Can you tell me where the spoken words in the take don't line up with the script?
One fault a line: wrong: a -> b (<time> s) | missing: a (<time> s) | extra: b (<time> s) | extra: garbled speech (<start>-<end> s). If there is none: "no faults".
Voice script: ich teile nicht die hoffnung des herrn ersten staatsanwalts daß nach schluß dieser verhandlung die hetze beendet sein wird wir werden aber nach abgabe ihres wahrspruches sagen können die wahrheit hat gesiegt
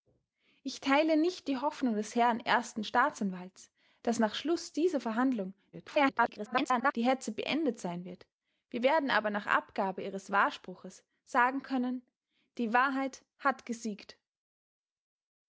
extra: garbled speech (5.7-6.9 s)